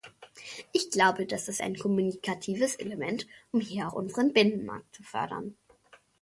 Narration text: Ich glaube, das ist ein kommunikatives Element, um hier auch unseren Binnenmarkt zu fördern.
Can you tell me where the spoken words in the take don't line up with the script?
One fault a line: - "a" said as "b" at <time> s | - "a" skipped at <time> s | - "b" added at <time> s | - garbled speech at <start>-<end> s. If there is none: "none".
none